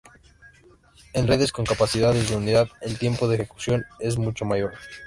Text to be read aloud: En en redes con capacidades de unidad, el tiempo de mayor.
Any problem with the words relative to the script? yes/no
yes